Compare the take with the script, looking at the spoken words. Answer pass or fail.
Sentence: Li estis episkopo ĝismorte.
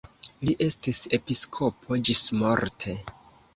pass